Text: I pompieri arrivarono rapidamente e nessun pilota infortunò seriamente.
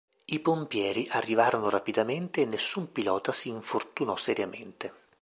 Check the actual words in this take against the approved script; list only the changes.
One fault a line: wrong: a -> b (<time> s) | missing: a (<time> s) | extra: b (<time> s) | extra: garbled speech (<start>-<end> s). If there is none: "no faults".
extra: si (3.3 s)